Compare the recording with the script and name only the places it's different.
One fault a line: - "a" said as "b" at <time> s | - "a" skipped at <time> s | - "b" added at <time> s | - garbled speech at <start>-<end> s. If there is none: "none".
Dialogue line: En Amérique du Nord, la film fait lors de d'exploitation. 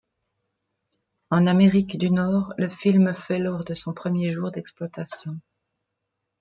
- "la" said as "le" at 2.6 s
- "son premier jour" added at 3.7 s